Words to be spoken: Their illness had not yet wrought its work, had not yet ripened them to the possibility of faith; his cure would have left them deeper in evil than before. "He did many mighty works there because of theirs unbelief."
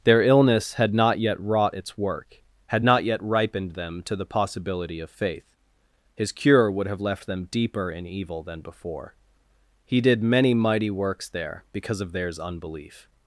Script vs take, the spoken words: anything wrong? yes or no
no